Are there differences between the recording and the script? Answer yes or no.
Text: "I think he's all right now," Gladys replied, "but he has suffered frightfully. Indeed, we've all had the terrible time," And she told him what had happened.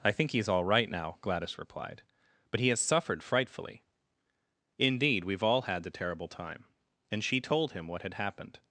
no